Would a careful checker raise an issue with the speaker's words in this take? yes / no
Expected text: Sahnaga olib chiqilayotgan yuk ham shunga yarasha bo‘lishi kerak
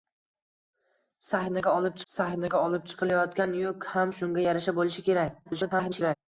yes